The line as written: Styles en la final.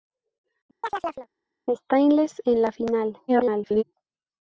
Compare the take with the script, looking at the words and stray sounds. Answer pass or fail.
fail